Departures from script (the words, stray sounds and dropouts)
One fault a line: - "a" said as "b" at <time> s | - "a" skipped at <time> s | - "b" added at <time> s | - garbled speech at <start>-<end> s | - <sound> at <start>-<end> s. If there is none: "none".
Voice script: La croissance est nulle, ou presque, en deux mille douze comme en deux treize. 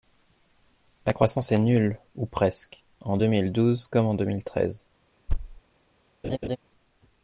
- "mille" added at 4.3 s
- thud at 5.3-5.6 s
- laugh at 6.2-6.6 s